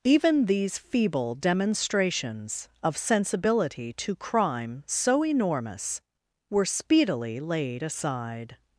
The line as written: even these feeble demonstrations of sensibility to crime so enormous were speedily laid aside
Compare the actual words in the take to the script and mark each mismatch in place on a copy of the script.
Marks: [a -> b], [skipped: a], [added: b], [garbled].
even these feeble demonstrations of sensibility to crime so enormous were speedily laid aside